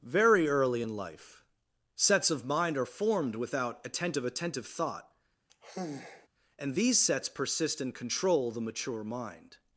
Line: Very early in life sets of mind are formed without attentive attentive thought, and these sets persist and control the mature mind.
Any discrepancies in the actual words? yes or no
no